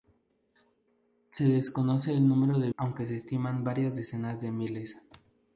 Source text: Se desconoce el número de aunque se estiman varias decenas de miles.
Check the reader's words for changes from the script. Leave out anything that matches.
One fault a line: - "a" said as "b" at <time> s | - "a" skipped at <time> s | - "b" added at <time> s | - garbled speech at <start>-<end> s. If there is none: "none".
none